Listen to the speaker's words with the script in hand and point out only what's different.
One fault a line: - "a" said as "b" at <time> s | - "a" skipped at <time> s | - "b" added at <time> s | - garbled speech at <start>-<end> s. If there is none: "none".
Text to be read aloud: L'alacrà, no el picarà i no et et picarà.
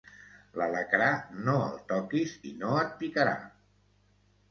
- "picarà" said as "toquis" at 1.9 s
- "et" skipped at 2.9 s